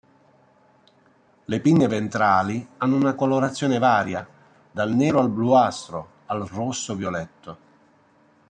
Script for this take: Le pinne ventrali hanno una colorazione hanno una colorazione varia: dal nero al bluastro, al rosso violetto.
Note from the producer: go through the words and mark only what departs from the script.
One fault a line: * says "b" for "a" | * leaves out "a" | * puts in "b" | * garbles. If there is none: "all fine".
* leaves out "hanno una colorazione"